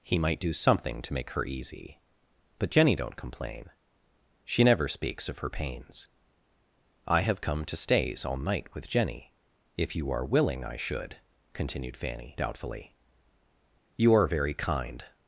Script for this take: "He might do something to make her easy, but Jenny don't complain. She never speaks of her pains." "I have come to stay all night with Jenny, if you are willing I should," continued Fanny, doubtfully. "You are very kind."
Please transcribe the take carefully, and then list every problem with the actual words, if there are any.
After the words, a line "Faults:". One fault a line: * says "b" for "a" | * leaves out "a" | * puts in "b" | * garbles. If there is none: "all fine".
"He might do something to make her easy, but Jenny don't complain. She never speaks of her pains." "I have come to stays all night with Jenny, if you are willing I should," continued Fanny, doubtfully. "You are very kind."
Faults:
* says "stays" for "stay"